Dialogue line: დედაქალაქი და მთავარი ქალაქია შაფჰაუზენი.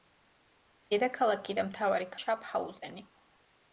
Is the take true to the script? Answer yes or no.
no